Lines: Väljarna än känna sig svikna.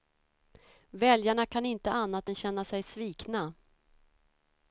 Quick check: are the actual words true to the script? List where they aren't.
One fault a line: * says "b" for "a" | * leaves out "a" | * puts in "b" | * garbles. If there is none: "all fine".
* puts in "kan inte annat"